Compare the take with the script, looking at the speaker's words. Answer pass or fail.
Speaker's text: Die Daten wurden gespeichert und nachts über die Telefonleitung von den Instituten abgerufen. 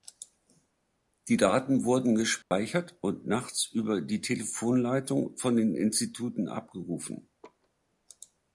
pass